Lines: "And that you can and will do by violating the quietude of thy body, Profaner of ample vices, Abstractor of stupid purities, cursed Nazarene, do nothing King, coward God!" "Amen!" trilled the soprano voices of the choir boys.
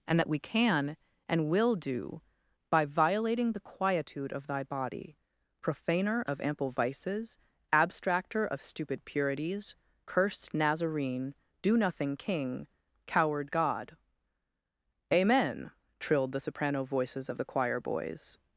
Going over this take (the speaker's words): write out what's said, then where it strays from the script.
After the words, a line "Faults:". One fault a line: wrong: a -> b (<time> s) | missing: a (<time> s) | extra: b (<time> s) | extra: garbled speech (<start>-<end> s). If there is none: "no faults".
"And that we can and will do by violating the quietude of thy body, Profaner of ample vices, Abstractor of stupid purities, cursed Nazarene, do nothing King, coward God!" "Amen!" trilled the soprano voices of the choir boys.
Faults:
wrong: you -> we (0.3 s)